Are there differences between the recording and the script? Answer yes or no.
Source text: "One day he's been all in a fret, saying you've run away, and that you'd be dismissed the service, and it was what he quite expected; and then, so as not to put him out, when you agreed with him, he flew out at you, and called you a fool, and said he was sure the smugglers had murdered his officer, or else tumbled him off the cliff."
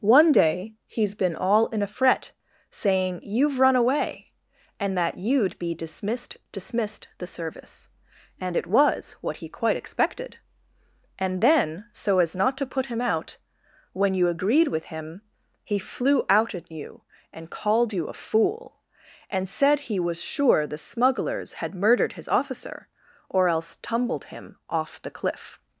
yes